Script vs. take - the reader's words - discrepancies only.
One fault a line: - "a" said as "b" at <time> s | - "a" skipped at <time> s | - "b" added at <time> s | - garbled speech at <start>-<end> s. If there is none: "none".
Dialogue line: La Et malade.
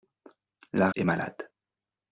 none